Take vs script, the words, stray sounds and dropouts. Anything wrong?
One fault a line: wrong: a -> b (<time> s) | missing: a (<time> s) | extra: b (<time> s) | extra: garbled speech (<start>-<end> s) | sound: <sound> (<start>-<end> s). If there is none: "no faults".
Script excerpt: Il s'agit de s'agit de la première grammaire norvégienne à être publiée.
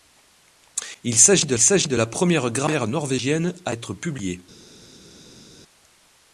no faults